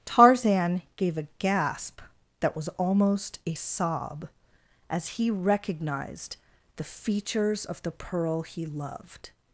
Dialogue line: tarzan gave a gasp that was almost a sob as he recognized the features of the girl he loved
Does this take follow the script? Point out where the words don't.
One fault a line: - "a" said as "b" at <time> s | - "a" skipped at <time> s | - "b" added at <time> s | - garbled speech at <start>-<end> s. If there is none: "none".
- "girl" said as "pearl" at 7.9 s